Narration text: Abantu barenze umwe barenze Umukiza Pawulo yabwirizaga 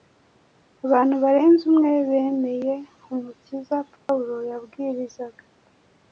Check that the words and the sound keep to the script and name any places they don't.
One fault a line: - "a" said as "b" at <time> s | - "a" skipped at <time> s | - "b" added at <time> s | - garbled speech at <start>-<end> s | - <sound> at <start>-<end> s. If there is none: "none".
- "barenze" said as "bemeye" at 2.1 s
- dropout at 4.0-4.1 s